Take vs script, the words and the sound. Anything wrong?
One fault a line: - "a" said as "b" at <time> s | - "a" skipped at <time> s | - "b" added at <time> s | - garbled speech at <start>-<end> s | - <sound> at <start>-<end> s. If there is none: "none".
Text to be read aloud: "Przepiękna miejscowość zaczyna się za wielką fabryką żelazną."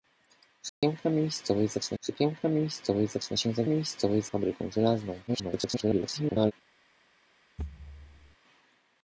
- dropout at 0.7-0.8 s
- "przepiękna miejscowość zaczyna" added at 2.0 s
- "wielką" said as "miejscowość" at 3.6 s
- garbled speech at 5.3-6.5 s
- thud at 7.6-8.4 s